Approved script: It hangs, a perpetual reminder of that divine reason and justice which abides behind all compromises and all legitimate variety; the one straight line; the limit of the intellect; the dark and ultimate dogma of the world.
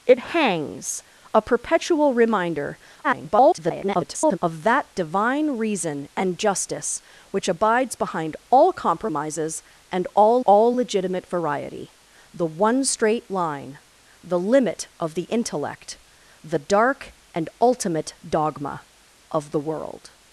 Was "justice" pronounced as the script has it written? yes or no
yes